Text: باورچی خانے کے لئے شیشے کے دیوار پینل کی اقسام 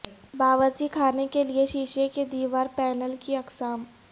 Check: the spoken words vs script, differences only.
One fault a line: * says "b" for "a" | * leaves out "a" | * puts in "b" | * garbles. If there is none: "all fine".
all fine